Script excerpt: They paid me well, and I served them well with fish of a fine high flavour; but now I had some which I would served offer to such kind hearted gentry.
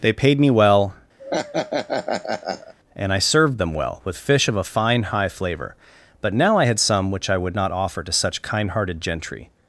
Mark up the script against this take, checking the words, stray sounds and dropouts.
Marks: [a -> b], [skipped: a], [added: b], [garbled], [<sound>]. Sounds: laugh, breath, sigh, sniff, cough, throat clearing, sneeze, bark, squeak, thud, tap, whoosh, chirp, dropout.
They paid me well, [laugh] and I served them well with fish of a fine high flavour; but now I had some which I would [served -> not] offer to such kind hearted gentry.